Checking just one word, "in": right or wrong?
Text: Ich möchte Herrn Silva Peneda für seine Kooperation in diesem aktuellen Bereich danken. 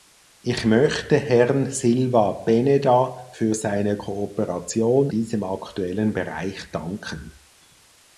wrong